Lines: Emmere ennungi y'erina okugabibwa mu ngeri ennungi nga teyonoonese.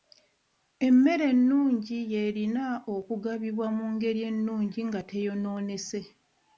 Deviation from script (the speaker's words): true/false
false